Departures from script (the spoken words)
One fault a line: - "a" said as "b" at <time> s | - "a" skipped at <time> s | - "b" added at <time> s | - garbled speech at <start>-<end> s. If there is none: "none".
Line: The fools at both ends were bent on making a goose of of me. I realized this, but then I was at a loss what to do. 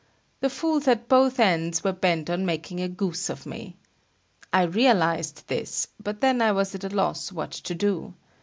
- "of" skipped at 3.5 s